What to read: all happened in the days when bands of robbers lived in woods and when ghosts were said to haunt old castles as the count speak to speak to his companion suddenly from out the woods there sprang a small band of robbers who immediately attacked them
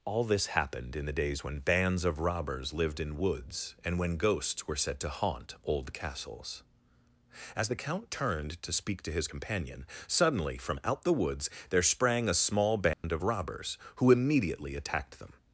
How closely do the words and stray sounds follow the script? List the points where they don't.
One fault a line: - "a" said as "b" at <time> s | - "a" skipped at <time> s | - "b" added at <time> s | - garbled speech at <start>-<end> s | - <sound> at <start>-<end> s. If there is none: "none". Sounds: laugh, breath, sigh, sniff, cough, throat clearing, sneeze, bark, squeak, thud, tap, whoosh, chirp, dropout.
- "this" added at 0.2 s
- "speak" said as "turned" at 8.1 s
- dropout at 12.9-13.0 s